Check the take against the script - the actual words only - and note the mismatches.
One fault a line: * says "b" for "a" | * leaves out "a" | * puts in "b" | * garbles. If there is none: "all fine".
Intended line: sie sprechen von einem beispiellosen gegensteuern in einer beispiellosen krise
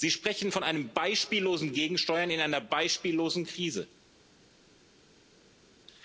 all fine